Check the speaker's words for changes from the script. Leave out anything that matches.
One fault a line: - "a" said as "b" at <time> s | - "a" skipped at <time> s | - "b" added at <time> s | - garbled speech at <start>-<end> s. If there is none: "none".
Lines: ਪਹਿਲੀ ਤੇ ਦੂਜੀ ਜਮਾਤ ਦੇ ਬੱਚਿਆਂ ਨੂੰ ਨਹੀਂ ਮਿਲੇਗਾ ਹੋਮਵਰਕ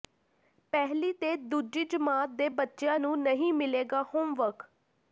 none